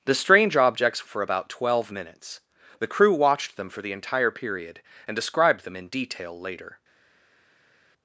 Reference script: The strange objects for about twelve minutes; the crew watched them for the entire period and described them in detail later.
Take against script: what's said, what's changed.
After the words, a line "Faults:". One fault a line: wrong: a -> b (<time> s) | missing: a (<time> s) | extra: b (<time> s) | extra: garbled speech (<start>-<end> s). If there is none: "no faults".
The strange objects for about twelve minutes; the crew watched them for the entire period and described them in detail later.
Faults:
no faults